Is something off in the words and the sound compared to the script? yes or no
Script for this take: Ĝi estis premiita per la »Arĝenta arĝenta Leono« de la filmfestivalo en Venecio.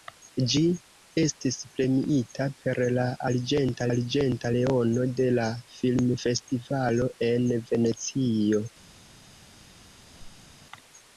yes